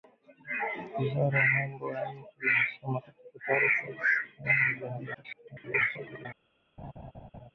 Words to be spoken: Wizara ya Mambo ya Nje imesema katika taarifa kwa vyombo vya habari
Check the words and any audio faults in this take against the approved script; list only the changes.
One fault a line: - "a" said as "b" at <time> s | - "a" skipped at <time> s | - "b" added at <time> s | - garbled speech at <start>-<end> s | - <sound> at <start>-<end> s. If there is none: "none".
- garbled speech at 5.1-6.3 s
- laugh at 6.8-7.5 s